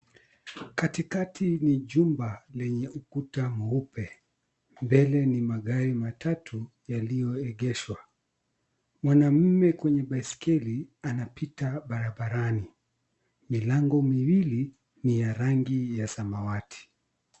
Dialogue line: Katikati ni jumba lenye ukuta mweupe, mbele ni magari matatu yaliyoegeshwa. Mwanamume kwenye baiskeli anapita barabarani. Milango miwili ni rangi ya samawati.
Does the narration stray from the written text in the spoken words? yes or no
yes